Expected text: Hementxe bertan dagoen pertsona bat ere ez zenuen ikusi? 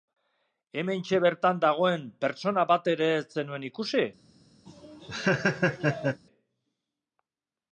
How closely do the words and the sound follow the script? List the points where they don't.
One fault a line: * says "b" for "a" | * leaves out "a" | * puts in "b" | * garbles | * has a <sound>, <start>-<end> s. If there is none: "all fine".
* has a laugh, 4.7-6.2 s